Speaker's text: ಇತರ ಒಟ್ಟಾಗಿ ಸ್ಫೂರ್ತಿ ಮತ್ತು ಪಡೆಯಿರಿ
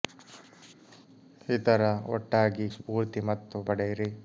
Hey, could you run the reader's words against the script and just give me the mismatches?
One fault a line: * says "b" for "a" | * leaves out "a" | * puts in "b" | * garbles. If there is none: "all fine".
all fine